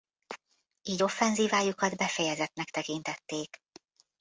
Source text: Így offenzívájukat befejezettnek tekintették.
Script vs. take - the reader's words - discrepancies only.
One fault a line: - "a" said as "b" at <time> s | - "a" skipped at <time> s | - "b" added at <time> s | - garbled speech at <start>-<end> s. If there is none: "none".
none